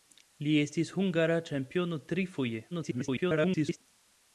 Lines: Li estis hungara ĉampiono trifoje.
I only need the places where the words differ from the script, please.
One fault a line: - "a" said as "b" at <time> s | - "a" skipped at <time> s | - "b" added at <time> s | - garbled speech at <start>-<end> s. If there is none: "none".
- garbled speech at 2.7-3.8 s